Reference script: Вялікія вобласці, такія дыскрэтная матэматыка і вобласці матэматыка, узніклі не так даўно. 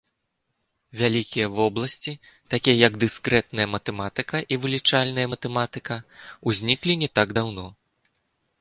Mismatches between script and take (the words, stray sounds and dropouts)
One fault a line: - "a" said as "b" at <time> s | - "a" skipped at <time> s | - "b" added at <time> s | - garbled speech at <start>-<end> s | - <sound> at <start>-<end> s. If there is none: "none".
- "як" added at 2.9 s
- "вобласці" said as "вылічальная" at 4.7 s